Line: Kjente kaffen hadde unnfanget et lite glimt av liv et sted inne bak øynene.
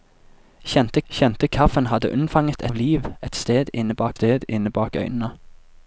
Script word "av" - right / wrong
wrong